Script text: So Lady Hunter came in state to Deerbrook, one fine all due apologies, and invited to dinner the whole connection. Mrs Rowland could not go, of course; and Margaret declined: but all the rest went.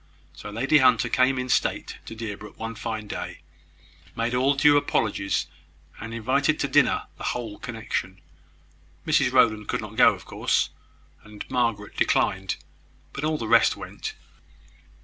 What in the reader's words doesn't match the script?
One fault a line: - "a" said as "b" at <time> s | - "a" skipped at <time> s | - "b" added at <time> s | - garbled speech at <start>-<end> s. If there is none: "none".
- "day made" added at 3.1 s